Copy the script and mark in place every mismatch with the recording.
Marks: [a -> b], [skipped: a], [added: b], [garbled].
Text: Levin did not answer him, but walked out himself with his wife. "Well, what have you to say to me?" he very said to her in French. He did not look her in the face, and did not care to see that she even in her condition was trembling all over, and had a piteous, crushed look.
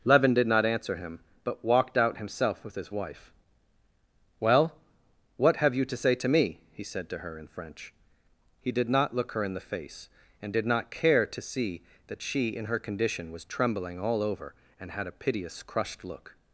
Levin did not answer him, but walked out himself with his wife. "Well, what have you to say to me?" he [skipped: very] said to her in French. He did not look her in the face, and did not care to see that she [skipped: even] in her condition was trembling all over, and had a piteous, crushed look.